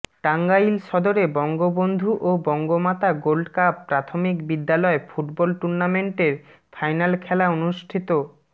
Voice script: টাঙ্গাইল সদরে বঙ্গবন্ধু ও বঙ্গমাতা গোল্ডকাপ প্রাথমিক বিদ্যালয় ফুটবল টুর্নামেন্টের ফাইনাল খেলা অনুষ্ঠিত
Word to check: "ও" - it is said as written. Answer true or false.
true